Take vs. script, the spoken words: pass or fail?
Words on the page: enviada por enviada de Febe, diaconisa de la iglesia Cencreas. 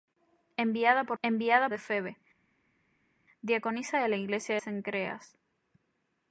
pass